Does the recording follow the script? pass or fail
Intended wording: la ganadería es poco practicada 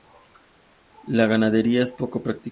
pass